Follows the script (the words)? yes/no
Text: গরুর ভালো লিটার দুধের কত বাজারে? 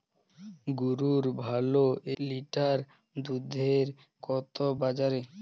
yes